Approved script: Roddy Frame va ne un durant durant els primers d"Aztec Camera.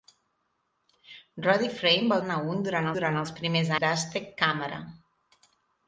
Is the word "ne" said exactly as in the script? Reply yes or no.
yes